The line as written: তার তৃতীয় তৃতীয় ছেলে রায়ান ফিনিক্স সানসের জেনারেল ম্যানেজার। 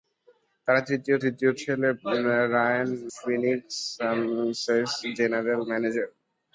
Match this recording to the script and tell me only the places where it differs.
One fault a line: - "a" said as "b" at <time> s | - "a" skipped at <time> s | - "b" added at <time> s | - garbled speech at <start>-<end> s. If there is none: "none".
none